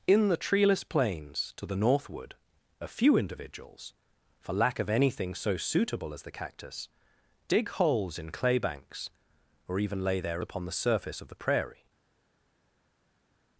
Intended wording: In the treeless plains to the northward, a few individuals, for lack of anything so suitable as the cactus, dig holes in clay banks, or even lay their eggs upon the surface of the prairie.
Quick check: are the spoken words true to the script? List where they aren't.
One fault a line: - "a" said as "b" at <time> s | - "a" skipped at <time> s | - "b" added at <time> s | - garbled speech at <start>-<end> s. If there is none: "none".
- "eggs" skipped at 10.4 s